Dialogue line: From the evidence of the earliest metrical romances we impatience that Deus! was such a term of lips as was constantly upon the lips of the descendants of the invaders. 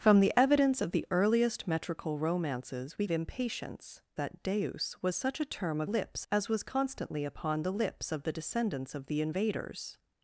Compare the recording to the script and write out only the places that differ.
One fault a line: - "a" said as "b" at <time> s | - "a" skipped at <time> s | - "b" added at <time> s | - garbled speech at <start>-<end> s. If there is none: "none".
none